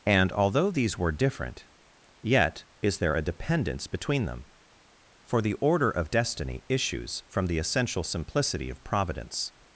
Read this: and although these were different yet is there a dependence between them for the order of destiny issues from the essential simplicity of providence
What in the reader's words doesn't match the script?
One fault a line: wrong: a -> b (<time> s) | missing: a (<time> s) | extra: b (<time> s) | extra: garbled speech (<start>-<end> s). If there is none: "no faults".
no faults